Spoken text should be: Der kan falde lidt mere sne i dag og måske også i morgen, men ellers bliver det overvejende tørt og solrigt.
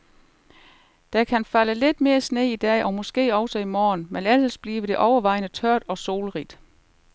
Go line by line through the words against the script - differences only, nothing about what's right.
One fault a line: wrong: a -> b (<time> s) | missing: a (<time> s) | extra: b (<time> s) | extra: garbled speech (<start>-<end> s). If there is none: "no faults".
no faults